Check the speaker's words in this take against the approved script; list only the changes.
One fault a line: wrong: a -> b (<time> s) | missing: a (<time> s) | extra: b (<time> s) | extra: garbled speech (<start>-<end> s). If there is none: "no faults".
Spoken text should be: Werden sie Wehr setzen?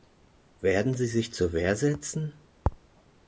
extra: sich zur (1.1 s)